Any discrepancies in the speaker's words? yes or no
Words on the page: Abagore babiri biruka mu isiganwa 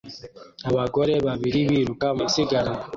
yes